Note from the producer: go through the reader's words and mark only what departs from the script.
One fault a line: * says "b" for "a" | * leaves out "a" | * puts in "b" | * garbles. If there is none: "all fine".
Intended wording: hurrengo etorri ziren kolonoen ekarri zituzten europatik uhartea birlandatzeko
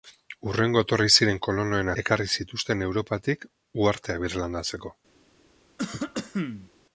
all fine